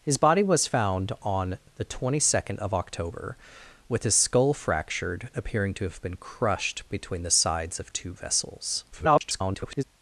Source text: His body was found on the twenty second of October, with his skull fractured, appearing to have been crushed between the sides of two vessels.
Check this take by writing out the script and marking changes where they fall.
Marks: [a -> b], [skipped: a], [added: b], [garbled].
His body was found on the twenty second of October, with his skull fractured, appearing to have been crushed between the sides of two vessels. [garbled]